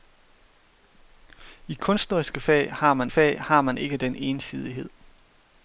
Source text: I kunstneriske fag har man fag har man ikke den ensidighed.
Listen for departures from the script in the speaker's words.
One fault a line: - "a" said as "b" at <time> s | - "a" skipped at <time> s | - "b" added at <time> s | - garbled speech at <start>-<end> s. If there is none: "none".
none